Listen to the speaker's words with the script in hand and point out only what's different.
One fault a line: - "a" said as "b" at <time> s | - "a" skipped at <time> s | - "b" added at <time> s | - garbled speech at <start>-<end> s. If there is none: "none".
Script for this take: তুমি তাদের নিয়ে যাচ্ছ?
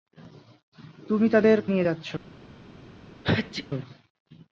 none